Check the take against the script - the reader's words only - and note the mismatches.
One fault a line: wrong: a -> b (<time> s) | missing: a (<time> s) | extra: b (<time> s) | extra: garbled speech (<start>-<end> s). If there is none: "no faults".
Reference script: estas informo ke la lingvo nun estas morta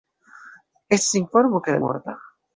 missing: lingvo nun estas (1.8 s)